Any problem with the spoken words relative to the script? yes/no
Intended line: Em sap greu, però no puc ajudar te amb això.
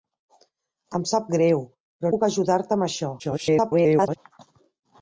yes